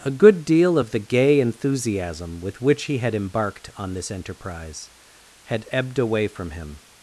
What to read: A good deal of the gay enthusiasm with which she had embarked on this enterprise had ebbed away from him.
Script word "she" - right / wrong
wrong